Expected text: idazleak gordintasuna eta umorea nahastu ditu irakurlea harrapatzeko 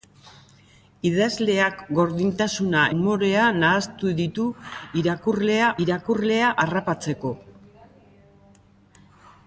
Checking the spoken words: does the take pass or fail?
fail